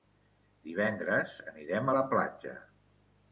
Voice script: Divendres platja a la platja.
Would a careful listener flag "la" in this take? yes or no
no